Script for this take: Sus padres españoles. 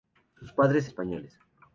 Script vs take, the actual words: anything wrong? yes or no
no